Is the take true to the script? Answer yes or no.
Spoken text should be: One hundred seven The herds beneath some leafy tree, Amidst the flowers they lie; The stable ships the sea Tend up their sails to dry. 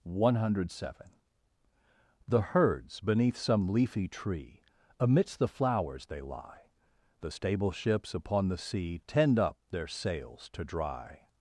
no